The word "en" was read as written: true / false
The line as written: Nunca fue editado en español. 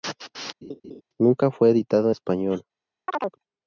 false